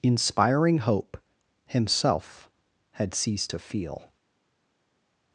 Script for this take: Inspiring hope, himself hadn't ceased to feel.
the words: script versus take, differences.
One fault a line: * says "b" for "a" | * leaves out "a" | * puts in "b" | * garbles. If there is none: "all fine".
* says "had" for "hadn't"